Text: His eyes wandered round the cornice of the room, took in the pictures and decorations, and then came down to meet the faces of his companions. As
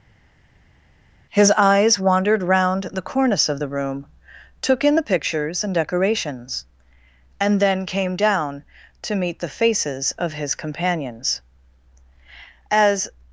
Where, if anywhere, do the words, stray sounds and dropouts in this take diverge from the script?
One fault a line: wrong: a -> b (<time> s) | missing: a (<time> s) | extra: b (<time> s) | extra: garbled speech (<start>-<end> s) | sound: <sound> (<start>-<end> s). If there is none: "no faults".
no faults